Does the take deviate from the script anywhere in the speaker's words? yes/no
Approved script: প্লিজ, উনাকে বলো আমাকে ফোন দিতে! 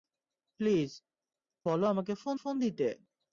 yes